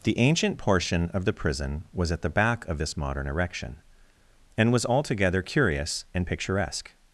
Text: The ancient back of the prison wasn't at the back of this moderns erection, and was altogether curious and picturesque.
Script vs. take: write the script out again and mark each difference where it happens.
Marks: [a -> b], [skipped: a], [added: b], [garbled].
The ancient [back -> portion] of the prison [wasn't -> was] at the back of this [moderns -> modern] erection, and was altogether curious and picturesque.